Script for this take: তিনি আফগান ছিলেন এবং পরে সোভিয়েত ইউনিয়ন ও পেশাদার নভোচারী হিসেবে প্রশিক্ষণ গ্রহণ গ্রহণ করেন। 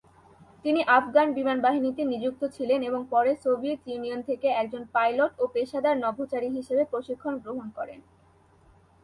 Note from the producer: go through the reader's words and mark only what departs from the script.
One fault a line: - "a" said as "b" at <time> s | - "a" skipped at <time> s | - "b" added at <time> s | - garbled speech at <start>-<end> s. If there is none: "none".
- "বিমান বাহিনীতে নিযুক্ত" added at 1.4 s
- "থেকে একজন পাইলট" added at 4.3 s
- "গ্রহণ" skipped at 7.7 s